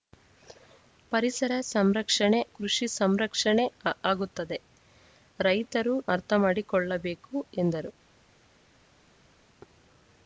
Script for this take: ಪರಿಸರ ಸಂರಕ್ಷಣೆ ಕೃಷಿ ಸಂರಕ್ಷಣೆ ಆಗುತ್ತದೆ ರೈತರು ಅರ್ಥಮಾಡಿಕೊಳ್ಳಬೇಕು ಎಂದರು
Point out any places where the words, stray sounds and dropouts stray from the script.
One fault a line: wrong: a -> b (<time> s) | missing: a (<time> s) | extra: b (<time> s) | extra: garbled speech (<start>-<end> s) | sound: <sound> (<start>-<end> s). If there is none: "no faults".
no faults